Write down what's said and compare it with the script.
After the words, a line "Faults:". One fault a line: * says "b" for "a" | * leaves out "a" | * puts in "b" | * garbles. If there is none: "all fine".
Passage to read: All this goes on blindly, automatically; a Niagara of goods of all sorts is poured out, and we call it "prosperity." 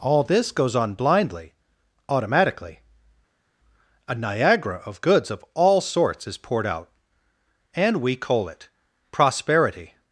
All this goes on blindly, automatically; a Niagara of goods of all sorts is poured out, and we coal it "prosperity."
Faults:
* says "coal" for "call"